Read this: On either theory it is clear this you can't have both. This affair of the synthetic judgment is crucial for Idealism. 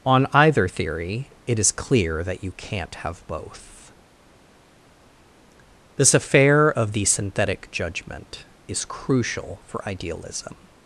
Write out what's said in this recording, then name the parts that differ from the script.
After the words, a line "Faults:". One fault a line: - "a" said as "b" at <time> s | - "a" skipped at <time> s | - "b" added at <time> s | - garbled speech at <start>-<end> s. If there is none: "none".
On either theory it is clear that you can't have both. This affair of the synthetic judgment is crucial for Idealism.
Faults:
- "this" said as "that" at 2.2 s